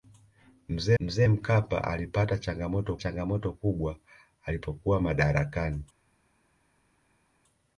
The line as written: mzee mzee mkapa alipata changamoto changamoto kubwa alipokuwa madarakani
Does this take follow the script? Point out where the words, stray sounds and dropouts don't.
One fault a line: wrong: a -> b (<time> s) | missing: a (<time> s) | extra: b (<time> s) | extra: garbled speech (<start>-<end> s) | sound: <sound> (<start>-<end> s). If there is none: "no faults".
no faults